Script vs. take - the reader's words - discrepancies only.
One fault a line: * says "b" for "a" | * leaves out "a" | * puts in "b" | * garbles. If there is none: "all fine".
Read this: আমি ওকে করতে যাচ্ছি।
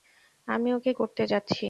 all fine